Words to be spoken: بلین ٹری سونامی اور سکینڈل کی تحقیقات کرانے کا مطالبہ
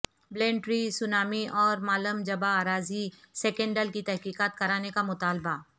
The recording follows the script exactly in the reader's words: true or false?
false